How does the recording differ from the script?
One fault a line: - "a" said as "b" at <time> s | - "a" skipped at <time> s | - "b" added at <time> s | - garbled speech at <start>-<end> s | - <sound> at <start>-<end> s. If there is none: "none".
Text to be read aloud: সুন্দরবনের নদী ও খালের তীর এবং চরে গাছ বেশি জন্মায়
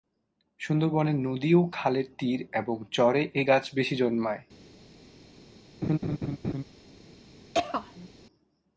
- "এ" added at 3.3 s
- laugh at 5.8-6.6 s
- throat clearing at 7.5-8.1 s